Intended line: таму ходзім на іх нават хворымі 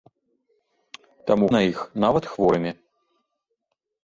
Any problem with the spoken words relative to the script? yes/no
yes